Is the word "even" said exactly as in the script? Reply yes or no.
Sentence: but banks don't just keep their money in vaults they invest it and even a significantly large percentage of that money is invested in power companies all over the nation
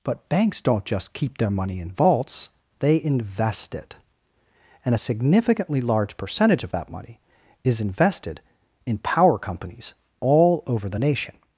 no